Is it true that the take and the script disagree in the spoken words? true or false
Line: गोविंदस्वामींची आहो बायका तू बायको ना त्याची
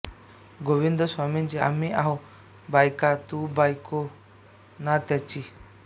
true